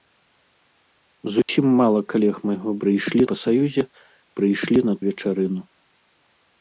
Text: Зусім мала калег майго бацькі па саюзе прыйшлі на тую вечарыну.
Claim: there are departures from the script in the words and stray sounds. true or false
true